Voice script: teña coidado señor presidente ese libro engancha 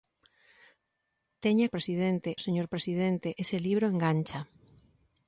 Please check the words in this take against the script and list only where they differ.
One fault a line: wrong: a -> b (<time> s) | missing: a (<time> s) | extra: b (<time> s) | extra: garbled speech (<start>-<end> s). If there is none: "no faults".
wrong: coidado -> presidente (1.7 s)